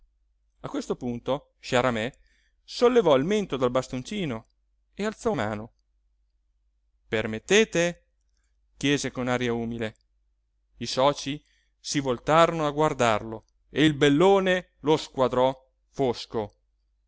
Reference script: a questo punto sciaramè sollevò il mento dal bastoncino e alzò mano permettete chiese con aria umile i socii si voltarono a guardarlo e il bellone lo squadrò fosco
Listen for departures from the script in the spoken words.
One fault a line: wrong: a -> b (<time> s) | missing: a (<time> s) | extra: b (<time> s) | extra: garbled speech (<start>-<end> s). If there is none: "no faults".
no faults